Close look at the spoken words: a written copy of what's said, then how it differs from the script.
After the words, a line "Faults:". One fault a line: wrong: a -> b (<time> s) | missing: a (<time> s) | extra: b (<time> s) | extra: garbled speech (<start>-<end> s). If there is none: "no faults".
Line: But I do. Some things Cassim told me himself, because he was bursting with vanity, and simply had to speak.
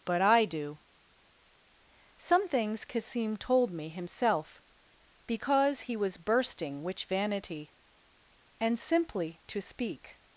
But I do. Some things Cassim told me himself, because he was bursting which vanity, and simply to speak.
Faults:
wrong: with -> which (6.8 s)
missing: had (9.4 s)